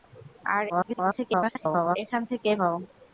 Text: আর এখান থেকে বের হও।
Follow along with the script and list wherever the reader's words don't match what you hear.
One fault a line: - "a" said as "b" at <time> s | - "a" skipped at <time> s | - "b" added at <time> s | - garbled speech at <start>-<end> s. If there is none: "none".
- garbled speech at 0.7-2.0 s
- "বের" skipped at 2.5 s